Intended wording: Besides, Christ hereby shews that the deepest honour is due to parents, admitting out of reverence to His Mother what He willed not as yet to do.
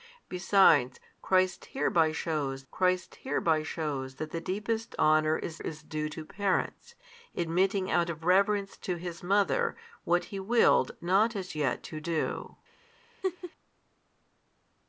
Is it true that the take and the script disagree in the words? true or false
true